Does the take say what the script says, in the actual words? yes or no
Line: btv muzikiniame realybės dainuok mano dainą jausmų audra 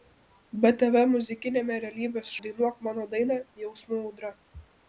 yes